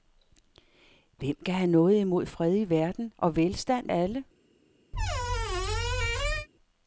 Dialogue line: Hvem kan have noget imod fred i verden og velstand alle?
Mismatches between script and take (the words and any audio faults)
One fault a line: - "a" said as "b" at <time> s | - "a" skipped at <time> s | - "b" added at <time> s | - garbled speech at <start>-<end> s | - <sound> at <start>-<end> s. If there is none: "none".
- squeak at 4.9-6.5 s